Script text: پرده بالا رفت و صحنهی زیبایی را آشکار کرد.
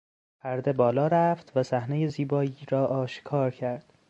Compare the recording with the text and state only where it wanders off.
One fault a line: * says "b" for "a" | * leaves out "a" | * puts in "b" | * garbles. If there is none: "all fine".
all fine